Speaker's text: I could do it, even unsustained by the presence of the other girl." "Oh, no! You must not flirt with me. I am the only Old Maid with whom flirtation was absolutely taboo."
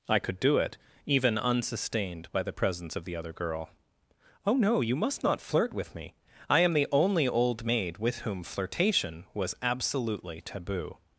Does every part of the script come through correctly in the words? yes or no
yes